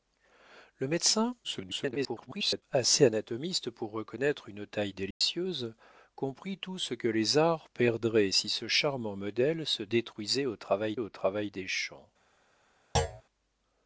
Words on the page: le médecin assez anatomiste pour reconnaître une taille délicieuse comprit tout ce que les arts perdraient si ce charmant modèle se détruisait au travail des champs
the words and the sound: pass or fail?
fail